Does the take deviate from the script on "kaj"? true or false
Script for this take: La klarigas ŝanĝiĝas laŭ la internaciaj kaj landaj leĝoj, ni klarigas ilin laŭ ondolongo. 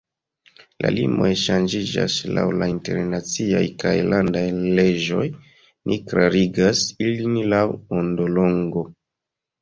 false